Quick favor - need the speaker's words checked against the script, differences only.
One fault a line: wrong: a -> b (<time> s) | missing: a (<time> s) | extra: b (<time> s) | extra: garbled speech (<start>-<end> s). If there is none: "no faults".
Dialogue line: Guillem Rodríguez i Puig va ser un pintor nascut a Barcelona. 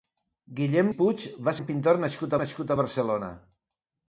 missing: Rodríguez (0.9 s)
missing: ser (1.5 s)
extra: nascut (2.4 s)